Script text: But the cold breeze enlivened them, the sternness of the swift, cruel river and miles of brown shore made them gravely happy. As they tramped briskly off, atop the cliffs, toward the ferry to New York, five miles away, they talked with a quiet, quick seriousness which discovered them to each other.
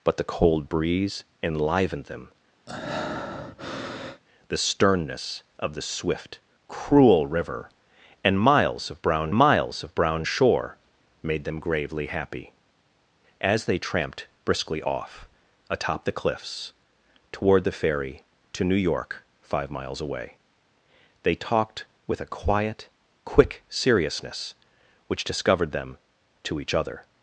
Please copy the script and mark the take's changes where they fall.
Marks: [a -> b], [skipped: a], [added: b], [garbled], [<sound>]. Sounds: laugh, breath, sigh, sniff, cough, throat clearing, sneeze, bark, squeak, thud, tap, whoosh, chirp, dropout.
But the cold breeze enlivened them, [breath] the sternness of the swift, cruel river and miles of brown [added: miles of brown] shore made them gravely happy. As they tramped briskly off, atop the cliffs, toward the ferry to New York, five miles away, they talked with a quiet, quick seriousness which discovered them to each other.